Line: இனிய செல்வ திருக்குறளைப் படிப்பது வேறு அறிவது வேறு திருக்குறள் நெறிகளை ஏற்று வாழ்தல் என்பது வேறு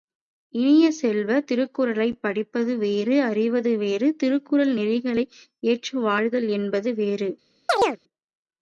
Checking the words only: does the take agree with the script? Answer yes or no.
yes